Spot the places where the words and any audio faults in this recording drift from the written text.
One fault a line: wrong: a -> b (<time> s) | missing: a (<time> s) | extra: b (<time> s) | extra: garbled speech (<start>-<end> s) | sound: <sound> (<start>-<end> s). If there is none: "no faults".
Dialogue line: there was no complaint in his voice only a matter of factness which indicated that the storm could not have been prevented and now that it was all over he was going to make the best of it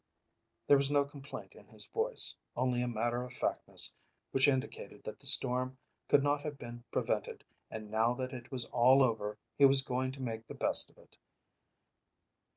no faults